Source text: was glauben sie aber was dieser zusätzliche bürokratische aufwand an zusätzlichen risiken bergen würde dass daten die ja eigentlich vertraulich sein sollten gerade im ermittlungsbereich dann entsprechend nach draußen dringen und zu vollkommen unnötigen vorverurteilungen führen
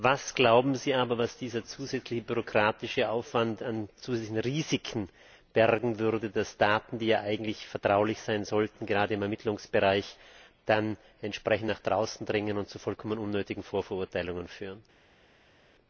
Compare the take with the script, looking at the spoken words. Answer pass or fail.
pass